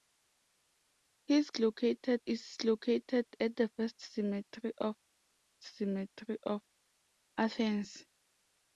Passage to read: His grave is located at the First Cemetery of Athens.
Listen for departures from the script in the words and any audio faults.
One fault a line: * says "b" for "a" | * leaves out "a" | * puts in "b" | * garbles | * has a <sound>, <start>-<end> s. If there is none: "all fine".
* says "located" for "grave"
* puts in "Cemetery of"